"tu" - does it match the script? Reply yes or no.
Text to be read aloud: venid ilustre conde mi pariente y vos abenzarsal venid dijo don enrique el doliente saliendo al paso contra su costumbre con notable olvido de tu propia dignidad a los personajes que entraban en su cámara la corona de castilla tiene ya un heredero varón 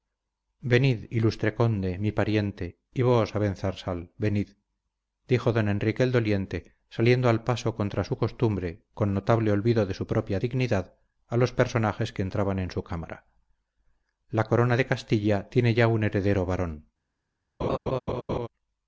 no